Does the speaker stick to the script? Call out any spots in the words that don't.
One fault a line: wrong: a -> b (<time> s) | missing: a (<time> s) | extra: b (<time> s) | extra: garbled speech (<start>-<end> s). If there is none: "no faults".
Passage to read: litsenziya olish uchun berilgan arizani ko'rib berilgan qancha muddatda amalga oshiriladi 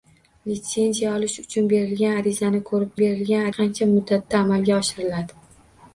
no faults